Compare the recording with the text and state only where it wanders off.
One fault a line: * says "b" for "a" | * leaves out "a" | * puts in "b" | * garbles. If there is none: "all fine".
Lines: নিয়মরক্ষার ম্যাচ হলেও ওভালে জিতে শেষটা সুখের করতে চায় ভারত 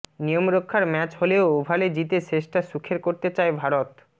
all fine